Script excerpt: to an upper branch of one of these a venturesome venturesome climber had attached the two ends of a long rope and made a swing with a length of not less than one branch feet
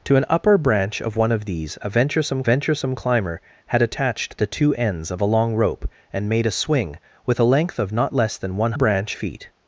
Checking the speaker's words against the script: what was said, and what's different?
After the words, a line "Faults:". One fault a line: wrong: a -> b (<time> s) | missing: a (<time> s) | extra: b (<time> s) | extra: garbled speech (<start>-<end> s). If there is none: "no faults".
to an upper branch of one of these a venturesome venturesome climber had attached the two ends of a long rope and made a swing with a length of not less than one branch feet
Faults:
no faults